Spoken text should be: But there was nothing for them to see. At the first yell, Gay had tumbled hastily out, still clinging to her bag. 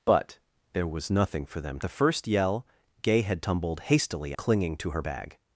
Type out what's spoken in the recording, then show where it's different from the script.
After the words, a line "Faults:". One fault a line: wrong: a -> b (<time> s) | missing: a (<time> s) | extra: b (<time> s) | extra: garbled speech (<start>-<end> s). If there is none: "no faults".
But there was nothing for them the first yell, Gay had tumbled hastily clinging to her bag.
Faults:
missing: to see At (1.8 s)
missing: out still (4.3 s)